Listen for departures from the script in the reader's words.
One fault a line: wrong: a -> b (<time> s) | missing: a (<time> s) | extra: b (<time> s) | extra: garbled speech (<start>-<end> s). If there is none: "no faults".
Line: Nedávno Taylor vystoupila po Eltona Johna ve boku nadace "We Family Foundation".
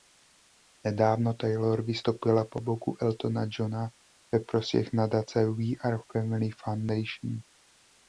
extra: boku (2.6 s)
wrong: boku -> prospěch (4.4 s)
extra: Are (5.8 s)